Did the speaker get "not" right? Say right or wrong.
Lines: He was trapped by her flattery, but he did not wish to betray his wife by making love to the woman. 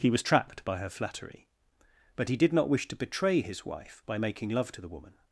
right